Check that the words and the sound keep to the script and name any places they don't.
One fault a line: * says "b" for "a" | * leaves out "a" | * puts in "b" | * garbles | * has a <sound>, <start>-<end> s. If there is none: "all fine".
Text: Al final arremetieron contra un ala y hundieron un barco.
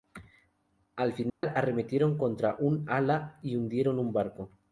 * has a dropout, 1.3-1.4 s